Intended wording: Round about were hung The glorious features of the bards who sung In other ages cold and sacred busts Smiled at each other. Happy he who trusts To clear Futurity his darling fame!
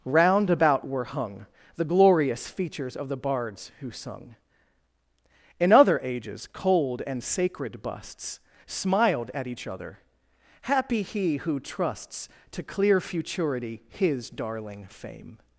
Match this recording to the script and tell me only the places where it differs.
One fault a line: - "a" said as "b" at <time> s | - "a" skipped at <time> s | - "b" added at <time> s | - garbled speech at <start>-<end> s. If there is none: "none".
none